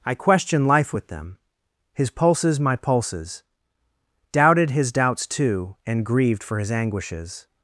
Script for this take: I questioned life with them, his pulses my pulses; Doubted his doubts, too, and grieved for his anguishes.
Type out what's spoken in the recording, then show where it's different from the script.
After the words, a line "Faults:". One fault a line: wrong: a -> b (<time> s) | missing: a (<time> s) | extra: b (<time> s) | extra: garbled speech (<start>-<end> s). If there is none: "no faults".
I questioned life with them, his pulses my pulses; Doubted his doubts, too, and grieved for his anguishes.
Faults:
no faults